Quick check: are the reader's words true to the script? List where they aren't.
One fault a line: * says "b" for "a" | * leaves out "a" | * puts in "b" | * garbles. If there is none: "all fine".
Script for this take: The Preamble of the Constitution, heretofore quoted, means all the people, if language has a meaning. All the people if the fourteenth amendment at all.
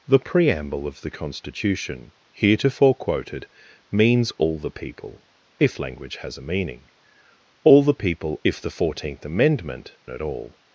all fine